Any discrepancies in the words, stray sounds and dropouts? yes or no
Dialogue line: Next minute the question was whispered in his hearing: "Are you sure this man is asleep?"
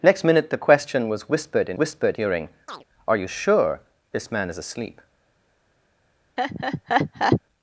yes